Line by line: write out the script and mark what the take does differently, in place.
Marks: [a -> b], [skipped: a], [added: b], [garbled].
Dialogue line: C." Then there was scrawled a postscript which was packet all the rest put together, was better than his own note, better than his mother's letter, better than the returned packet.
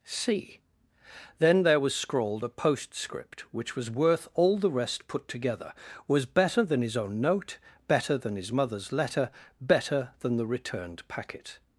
C." Then there was scrawled a postscript which was [packet -> worth] all the rest put together, was better than his own note, better than his mother's letter, better than the returned packet.